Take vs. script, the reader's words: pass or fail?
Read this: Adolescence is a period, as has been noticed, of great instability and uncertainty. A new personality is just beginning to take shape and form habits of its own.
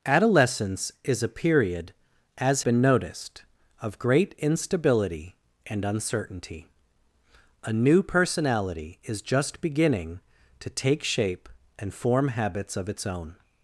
fail